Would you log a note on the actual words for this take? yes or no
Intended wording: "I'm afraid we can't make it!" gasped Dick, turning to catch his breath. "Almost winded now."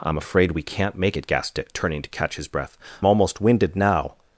no